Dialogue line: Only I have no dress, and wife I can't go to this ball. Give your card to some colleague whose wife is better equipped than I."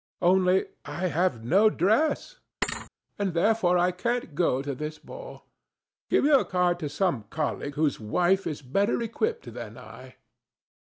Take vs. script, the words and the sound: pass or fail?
fail